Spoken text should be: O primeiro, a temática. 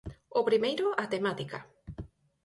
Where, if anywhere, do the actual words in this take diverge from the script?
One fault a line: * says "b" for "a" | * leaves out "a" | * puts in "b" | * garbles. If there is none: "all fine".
all fine